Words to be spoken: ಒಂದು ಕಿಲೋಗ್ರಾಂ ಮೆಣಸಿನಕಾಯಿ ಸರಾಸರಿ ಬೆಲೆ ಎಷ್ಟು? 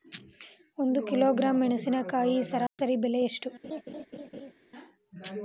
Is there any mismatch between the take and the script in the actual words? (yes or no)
no